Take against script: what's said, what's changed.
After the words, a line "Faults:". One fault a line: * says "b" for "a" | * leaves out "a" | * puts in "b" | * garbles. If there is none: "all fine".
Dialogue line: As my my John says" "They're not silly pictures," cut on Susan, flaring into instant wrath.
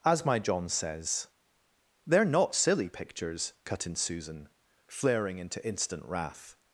As my John says" "They're not silly pictures," cut in Susan, flaring into instant wrath.
Faults:
* leaves out "my"
* says "in" for "on"